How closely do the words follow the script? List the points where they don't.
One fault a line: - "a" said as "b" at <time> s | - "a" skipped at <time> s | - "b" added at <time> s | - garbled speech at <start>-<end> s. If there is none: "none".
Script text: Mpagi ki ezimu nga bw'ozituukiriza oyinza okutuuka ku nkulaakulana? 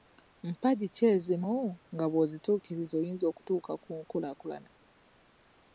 none